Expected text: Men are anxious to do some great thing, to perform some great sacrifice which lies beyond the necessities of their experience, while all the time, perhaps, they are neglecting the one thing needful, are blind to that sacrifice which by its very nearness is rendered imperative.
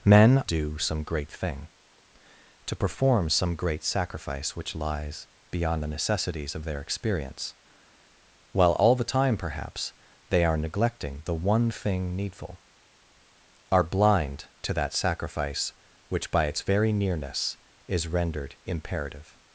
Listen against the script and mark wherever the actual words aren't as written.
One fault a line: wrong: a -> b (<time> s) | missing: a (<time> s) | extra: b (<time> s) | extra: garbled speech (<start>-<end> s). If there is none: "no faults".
missing: are anxious to (0.4 s)